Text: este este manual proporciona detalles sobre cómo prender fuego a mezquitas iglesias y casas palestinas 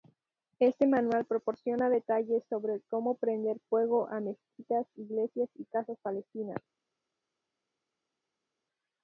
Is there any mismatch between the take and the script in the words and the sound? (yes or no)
yes